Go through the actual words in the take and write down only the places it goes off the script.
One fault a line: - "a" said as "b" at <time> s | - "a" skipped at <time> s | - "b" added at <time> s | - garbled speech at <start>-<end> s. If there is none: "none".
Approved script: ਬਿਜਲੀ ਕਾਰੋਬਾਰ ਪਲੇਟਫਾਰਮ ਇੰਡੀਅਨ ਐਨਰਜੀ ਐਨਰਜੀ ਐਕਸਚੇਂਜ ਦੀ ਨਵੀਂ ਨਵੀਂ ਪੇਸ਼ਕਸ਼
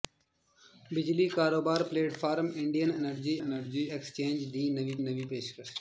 none